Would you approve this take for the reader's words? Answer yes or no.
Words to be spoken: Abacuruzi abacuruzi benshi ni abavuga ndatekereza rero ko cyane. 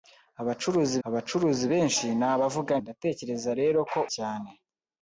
yes